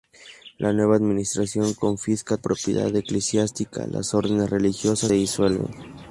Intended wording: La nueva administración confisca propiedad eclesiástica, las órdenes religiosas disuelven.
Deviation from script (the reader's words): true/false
false